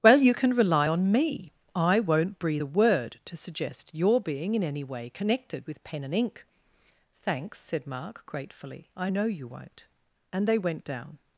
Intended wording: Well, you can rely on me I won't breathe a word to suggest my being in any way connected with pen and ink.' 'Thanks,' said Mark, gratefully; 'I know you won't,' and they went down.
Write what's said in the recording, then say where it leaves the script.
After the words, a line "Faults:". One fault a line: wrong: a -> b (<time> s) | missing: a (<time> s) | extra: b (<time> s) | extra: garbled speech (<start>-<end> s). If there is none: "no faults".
Well, you can rely on me I won't breathe a word to suggest your being in any way connected with pen and ink.' 'Thanks,' said Mark, gratefully; 'I know you won't,' and they went down.
Faults:
wrong: my -> your (3.9 s)